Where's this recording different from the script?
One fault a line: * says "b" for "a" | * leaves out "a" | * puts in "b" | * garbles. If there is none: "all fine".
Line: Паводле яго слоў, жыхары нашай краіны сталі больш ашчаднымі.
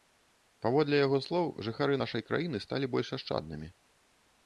all fine